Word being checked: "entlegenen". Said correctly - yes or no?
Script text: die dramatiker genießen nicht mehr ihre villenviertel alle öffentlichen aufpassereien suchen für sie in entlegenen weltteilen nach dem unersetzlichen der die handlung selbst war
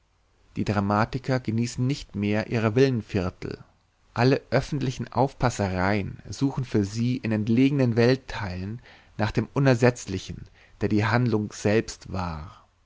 yes